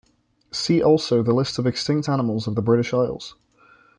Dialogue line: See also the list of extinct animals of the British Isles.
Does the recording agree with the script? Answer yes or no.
yes